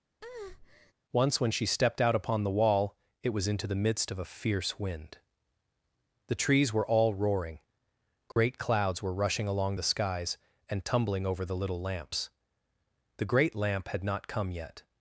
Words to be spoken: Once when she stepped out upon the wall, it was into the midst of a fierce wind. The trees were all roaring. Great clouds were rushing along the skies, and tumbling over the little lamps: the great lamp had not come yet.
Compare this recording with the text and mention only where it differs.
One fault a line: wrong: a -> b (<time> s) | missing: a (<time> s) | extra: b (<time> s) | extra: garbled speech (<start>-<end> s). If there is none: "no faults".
no faults